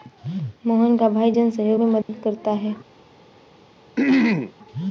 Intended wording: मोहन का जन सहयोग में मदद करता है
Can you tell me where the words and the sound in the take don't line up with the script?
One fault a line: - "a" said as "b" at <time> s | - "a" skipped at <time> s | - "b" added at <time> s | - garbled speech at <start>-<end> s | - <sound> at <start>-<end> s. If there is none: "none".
- "भाई" added at 1.1 s
- dropout at 2.0-2.1 s
- throat clearing at 4.0-4.5 s